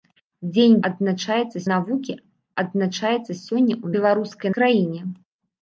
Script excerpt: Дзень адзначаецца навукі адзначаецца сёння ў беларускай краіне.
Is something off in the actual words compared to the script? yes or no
no